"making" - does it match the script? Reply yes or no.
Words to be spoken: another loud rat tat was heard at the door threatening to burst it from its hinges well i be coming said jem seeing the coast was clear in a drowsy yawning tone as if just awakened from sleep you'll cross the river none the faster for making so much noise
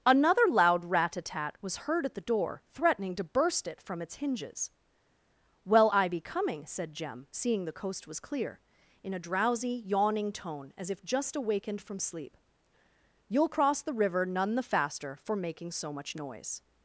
yes